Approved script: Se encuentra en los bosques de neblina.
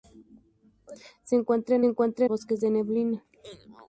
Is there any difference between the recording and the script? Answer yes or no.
yes